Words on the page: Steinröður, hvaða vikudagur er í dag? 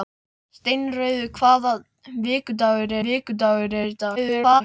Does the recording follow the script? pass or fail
fail